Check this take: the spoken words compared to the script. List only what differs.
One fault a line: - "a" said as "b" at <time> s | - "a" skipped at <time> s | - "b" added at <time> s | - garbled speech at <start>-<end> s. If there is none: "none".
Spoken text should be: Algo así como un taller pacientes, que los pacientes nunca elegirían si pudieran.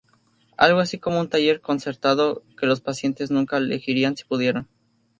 - "pacientes" said as "concertado" at 1.6 s